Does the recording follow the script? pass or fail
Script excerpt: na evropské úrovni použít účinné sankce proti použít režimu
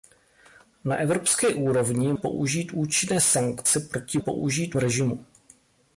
pass